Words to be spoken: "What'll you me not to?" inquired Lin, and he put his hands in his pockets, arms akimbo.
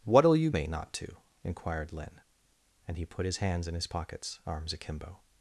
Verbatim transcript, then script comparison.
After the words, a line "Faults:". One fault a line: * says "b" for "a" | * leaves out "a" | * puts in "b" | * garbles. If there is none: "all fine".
"What'll you me not to?" inquired Lin, and he put his hands in his pockets, arms akimbo.
Faults:
all fine